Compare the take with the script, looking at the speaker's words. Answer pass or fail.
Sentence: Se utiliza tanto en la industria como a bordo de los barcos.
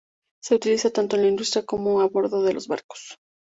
pass